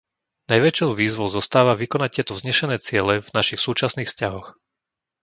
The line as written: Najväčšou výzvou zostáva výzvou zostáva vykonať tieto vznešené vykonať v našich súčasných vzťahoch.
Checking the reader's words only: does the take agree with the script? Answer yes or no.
no